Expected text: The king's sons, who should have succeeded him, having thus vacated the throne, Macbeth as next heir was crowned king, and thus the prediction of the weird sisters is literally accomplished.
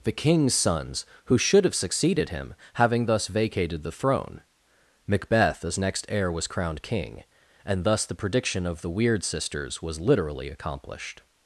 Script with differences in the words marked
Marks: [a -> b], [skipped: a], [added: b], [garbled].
The king's sons, who should have succeeded him, having thus vacated the throne, Macbeth as next heir was crowned king, and thus the prediction of the weird sisters [is -> was] literally accomplished.